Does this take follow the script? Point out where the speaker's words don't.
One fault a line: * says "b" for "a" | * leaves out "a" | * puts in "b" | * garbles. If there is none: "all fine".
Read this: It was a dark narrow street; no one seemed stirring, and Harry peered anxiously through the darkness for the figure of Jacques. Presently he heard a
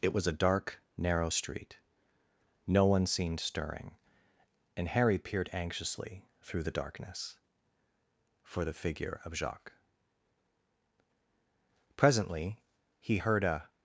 all fine